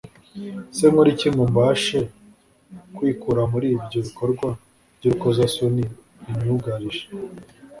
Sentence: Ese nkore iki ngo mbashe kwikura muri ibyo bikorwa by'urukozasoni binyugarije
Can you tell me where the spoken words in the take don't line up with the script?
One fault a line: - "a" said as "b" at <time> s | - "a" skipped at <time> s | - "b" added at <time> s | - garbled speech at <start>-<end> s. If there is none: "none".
none